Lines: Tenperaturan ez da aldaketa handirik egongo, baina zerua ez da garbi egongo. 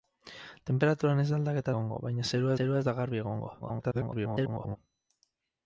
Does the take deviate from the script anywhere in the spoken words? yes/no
yes